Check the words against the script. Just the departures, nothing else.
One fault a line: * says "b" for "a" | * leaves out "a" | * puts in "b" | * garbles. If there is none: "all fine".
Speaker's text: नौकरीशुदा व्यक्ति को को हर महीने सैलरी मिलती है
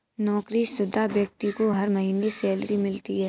* leaves out "को"